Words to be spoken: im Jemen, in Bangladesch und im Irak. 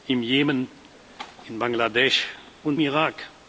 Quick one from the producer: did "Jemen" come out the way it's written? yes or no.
yes